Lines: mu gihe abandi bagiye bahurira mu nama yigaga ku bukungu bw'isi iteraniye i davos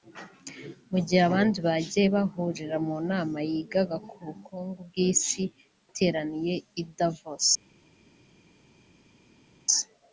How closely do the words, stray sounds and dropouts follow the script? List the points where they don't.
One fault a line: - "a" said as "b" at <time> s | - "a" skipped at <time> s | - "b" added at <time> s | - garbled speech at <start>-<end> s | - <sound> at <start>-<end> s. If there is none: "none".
none